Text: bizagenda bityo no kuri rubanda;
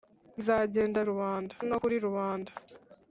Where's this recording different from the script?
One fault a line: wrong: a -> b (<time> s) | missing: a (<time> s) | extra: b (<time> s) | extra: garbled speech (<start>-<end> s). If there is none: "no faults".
wrong: bityo -> rubanda (1.1 s)